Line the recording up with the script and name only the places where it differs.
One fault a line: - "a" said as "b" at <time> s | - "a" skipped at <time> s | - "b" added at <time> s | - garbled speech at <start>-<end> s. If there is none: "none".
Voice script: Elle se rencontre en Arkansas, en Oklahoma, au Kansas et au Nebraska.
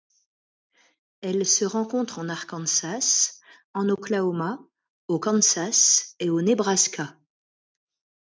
none